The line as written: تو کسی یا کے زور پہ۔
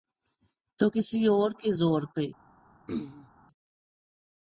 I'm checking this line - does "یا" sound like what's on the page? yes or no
no